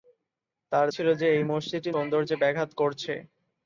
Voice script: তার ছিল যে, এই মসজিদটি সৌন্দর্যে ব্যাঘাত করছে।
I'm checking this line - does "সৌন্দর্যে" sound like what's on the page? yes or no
yes